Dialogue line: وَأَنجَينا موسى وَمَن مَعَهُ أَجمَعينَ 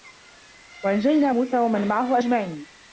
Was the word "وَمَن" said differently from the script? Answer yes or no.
no